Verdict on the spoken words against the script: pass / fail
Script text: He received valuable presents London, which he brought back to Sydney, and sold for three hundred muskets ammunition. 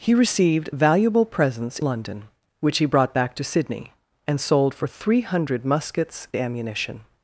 pass